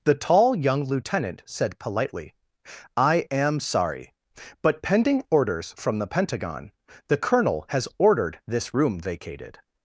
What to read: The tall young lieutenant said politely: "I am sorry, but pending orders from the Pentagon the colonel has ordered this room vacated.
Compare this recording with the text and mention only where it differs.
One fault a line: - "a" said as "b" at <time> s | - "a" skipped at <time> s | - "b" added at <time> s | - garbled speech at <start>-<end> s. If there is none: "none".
none